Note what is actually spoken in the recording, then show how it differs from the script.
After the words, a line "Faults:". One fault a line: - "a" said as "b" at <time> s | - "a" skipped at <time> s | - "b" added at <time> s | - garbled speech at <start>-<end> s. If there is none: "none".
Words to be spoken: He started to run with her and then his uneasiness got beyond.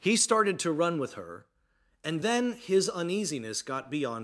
He started to run with her and then his uneasiness got beyond.
Faults:
none